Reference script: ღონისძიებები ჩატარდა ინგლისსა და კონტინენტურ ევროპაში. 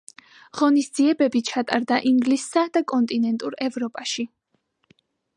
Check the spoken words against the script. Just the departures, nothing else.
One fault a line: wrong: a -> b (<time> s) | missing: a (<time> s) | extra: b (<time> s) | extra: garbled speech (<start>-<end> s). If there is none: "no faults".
no faults